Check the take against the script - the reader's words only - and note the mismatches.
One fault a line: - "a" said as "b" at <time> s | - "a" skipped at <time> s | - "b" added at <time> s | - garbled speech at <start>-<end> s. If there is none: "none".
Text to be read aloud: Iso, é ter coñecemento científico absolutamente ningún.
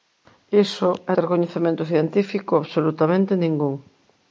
none